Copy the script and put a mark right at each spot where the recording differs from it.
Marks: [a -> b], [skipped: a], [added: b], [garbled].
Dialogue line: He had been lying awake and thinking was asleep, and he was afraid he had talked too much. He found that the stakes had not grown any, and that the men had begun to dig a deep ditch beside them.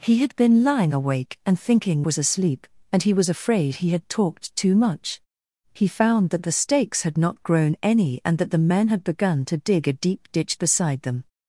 He had been lying awake and thinking was asleep, and he was afraid he had talked too much. He found that the stakes had not grown any, and that the men had begun to dig a deep ditch beside them.